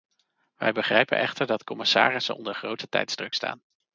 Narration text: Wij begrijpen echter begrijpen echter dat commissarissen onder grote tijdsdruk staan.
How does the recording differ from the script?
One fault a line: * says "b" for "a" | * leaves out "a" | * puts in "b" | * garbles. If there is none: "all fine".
* leaves out "begrijpen echter"